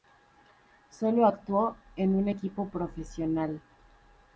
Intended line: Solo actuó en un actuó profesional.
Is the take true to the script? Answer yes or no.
no